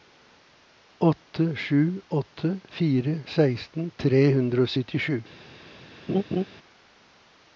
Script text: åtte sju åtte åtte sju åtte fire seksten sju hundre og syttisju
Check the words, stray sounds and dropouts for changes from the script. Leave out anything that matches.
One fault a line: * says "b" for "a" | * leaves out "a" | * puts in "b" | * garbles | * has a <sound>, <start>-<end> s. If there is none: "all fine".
* leaves out "åtte sju åtte"
* says "tre" for "sju"
* has a laugh, 6.1-6.4 s